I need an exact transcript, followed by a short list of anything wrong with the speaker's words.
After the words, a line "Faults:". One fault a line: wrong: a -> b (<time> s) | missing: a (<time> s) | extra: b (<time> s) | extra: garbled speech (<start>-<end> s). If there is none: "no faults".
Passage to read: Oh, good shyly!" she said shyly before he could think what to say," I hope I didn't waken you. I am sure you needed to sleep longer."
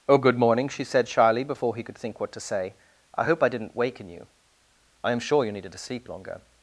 Oh, good morning!" she said shyly before he could think what to say," I hope I didn't waken you. I am sure you needed to sleep longer."
Faults:
wrong: shyly -> morning (0.4 s)